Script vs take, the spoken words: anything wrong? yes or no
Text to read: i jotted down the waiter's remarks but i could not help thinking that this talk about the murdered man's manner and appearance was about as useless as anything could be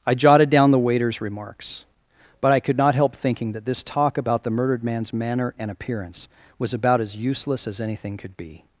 no